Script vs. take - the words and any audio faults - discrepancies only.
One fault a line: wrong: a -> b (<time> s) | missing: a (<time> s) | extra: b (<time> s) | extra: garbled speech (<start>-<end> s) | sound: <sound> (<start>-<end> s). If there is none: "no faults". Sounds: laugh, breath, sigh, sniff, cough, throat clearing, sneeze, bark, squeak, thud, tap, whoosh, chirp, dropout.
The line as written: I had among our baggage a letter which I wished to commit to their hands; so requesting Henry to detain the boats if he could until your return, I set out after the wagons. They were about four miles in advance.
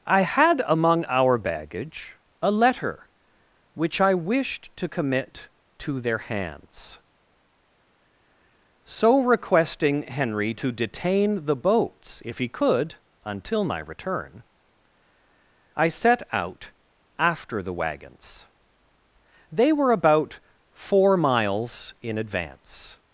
wrong: your -> my (13.6 s)